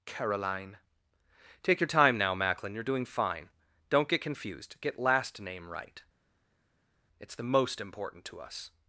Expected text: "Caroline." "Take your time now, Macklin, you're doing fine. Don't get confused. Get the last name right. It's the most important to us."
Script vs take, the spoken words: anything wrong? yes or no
yes